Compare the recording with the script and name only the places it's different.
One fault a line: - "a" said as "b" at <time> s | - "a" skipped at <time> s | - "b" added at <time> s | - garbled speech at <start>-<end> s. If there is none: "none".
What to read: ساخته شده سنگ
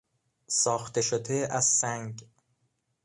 - "از" added at 1.5 s